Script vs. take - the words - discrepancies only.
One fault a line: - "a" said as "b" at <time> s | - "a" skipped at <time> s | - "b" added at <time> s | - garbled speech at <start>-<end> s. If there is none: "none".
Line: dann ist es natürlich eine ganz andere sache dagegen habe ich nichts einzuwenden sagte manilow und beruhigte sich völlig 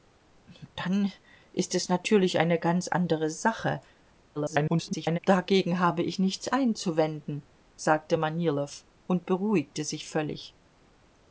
- garbled speech at 4.4-5.2 s